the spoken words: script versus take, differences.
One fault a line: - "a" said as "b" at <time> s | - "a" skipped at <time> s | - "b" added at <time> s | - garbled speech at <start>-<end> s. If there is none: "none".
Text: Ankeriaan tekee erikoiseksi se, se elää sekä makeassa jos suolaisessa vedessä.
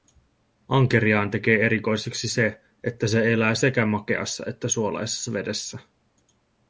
- "että" added at 2.8 s
- "jos" said as "että" at 4.5 s